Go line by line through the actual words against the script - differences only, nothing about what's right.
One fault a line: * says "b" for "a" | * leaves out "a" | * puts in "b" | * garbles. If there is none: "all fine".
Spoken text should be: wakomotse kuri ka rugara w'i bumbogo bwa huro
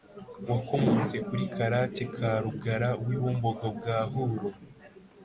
* puts in "karake"